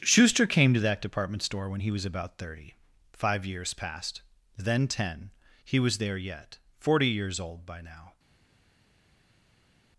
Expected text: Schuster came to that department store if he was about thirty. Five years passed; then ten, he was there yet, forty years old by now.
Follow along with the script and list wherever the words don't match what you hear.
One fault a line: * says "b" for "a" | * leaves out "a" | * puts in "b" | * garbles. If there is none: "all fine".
* says "when" for "if"